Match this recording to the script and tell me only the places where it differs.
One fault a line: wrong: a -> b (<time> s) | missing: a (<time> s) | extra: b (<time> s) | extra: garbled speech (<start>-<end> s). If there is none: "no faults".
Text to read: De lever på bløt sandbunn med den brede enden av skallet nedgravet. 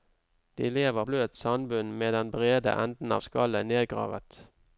missing: på (1.1 s)